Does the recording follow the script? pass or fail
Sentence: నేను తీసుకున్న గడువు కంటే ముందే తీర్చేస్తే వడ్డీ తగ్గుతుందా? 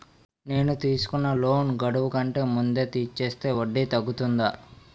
fail